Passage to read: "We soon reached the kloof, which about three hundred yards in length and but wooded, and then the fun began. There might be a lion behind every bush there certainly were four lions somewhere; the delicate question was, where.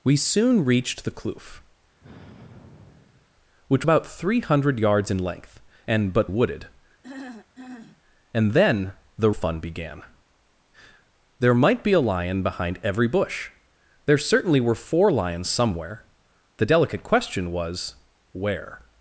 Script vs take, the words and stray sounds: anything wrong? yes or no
yes